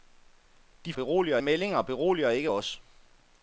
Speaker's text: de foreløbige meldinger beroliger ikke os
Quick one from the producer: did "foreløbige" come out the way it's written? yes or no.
no